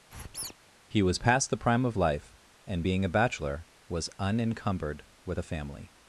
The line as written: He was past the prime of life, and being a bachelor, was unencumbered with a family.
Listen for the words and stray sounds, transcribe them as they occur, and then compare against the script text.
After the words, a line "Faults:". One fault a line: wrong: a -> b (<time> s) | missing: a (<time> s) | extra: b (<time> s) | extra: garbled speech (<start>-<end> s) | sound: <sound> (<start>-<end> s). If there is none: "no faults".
He was past the prime of life, and being a bachelor, was unencumbered with a family.
Faults:
sound: squeak (0.1-0.5 s)